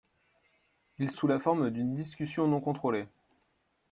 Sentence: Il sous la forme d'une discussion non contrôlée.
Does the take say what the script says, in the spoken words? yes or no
yes